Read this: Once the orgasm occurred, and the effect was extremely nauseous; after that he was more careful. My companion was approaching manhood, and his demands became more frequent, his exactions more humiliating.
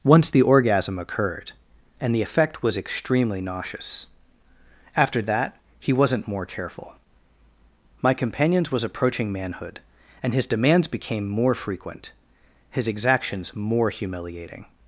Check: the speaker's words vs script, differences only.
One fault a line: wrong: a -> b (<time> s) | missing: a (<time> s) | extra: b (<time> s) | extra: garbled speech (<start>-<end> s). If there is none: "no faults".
wrong: was -> wasn't (5.9 s)
wrong: companion -> companions (8.1 s)